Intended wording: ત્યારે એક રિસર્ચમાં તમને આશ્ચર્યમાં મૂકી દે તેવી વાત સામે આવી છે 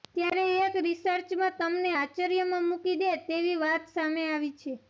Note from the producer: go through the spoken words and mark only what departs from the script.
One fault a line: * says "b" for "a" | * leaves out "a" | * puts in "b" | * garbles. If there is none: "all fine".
all fine